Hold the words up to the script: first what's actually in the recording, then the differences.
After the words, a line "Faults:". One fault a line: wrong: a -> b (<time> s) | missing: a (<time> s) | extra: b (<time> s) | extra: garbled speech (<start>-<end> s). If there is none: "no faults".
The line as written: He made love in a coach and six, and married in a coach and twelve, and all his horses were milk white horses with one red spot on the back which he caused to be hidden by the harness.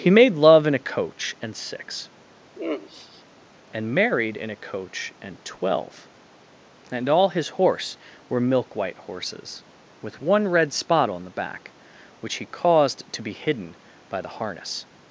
He made love in a coach and six, and married in a coach and twelve, and all his horse were milk white horses with one red spot on the back which he caused to be hidden by the harness.
Faults:
wrong: horses -> horse (7.5 s)